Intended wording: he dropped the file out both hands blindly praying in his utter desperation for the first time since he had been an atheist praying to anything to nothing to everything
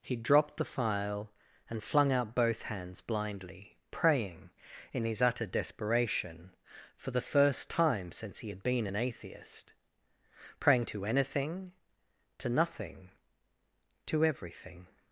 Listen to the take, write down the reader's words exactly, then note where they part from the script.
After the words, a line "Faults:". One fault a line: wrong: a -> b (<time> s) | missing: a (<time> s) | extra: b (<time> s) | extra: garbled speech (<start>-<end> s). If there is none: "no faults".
he dropped the file and flung out both hands blindly praying in his utter desperation for the first time since he had been an atheist praying to anything to nothing to everything
Faults:
extra: and flung (1.7 s)